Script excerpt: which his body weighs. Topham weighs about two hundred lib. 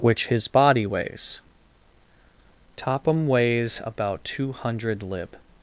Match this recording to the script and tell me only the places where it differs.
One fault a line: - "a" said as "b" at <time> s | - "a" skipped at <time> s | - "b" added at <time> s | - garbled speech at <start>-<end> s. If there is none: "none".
none